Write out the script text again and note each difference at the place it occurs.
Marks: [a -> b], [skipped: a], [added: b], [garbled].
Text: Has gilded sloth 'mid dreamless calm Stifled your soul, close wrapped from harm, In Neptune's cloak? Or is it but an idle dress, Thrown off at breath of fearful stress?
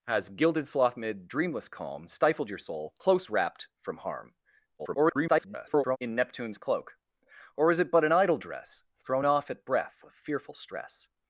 Has gilded sloth 'mid dreamless calm Stifled your soul, close wrapped from harm, [garbled] In Neptune's cloak? Or is it but an idle dress, Thrown off at breath of fearful stress?